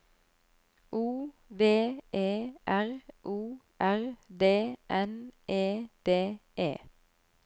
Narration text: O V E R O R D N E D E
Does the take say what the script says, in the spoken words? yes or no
yes